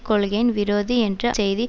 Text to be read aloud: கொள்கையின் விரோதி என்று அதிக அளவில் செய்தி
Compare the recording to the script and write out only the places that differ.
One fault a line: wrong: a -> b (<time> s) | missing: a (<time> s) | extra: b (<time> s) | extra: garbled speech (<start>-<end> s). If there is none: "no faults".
missing: அதிக அளவில் (1.3 s)